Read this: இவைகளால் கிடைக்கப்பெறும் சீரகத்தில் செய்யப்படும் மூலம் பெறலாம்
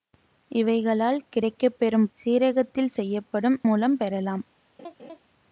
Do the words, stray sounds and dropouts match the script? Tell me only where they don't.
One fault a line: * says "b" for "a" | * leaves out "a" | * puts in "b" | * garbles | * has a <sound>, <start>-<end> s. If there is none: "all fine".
* has a laugh, 4.8-5.2 s